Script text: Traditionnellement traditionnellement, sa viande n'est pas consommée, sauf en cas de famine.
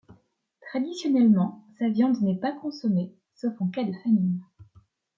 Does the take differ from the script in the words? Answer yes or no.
yes